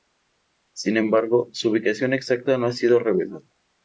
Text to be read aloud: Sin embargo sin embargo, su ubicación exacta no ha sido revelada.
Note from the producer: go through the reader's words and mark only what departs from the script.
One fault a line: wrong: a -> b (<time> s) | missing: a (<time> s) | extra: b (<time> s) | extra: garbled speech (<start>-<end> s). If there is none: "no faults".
missing: sin embargo (1.5 s)